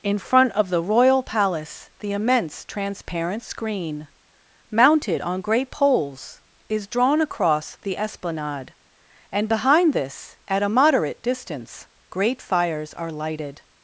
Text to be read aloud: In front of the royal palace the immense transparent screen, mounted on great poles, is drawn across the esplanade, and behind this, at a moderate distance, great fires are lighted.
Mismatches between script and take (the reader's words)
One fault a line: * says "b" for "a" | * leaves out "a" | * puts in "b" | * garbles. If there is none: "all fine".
all fine